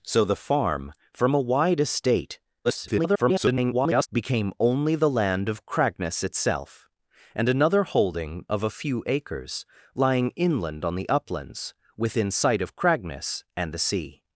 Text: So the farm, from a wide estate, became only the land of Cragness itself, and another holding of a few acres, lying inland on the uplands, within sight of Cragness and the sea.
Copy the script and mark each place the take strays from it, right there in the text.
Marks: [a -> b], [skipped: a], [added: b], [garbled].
So the farm, from a wide estate, [garbled] became only the land of Cragness itself, and another holding of a few acres, lying inland on the uplands, within sight of Cragness and the sea.